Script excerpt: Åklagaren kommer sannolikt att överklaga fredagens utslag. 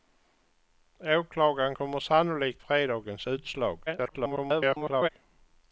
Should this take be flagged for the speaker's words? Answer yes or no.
yes